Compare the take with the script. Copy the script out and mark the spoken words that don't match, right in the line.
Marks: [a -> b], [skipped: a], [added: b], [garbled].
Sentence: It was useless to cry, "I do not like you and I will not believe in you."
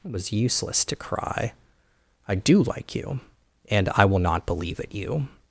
It was useless to cry, "I do [skipped: not] like you and I will not believe [in -> at] you."